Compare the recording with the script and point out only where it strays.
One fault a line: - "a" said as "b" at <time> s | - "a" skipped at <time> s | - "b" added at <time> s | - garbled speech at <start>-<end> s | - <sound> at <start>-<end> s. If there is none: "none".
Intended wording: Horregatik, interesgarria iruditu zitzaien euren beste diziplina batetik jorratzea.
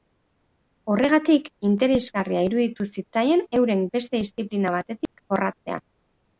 - dropout at 5.1-5.1 s